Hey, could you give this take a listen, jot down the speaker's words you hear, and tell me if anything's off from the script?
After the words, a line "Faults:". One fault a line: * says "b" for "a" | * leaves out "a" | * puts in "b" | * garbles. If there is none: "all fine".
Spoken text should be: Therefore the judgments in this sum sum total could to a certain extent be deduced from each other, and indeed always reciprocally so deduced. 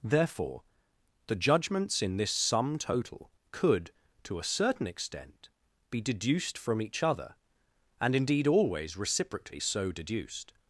Therefore the judgments in this sum total could to a certain extent be deduced from each other, and indeed always reciprocally so deduced.
Faults:
* leaves out "sum"